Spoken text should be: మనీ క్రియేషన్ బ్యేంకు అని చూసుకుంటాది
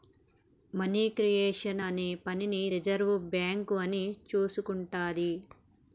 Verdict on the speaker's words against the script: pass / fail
fail